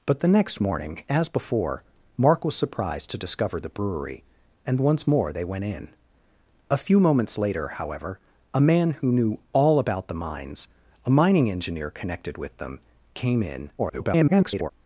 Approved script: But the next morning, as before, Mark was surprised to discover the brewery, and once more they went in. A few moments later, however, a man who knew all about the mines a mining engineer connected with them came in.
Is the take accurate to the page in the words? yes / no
no